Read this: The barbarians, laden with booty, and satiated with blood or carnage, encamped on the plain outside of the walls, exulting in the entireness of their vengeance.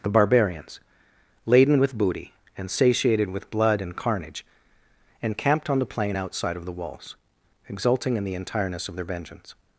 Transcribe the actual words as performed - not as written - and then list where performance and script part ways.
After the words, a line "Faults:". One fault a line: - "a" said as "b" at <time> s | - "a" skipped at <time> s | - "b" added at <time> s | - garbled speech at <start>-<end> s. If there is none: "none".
The barbarians, laden with booty, and satiated with blood and carnage, encamped on the plain outside of the walls, exulting in the entireness of their vengeance.
Faults:
- "or" said as "and" at 3.8 s